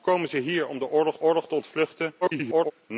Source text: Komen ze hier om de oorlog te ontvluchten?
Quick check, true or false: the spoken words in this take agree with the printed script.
false